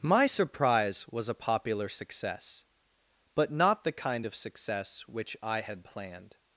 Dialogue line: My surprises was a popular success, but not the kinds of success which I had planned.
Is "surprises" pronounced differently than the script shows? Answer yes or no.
yes